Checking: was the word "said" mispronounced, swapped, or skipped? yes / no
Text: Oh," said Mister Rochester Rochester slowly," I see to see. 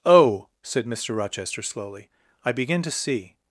no